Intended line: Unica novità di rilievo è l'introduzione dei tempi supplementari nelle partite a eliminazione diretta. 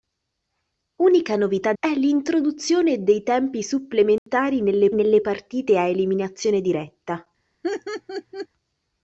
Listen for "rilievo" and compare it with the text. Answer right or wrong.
wrong